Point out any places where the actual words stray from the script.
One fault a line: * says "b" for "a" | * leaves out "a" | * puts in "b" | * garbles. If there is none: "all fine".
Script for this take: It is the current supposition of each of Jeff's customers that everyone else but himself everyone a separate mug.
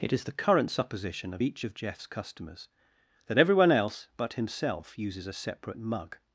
* says "uses" for "everyone"